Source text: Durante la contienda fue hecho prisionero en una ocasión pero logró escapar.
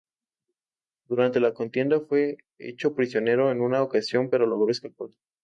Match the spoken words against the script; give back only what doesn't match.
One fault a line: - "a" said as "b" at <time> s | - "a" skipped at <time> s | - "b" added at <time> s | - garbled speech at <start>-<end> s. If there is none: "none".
none